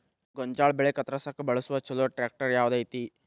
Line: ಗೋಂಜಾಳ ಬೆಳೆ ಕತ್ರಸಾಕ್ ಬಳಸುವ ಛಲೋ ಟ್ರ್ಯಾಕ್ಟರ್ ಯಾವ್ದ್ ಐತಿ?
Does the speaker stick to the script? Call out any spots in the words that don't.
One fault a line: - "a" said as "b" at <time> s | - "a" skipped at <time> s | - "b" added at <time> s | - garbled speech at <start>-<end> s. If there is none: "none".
none